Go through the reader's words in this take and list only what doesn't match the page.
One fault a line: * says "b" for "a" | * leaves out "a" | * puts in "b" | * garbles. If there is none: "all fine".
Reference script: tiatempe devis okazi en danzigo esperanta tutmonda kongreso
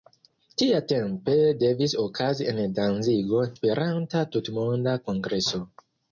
all fine